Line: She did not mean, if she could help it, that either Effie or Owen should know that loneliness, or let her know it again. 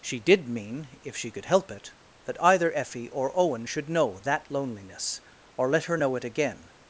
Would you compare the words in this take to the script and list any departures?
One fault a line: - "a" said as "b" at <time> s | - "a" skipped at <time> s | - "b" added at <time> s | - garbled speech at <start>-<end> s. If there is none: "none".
- "not" skipped at 0.5 s